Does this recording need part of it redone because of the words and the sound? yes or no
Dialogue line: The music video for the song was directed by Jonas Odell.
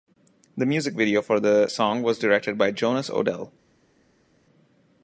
no